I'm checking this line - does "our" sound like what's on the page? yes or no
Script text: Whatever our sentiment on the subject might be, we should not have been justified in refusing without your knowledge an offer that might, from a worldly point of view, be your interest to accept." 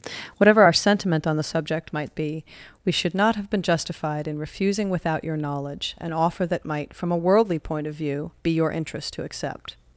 yes